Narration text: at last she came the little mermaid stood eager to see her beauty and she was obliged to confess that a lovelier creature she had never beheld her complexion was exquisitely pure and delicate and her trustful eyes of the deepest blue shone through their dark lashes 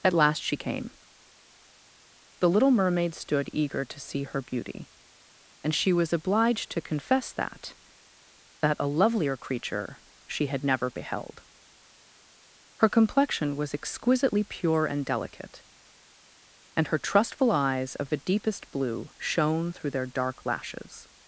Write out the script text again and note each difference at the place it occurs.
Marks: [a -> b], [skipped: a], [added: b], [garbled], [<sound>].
at last she came the little mermaid stood eager to see her beauty and she was obliged to confess that [added: that] a lovelier creature she had never beheld her complexion was exquisitely pure and delicate and her trustful eyes of the deepest blue shone through their dark lashes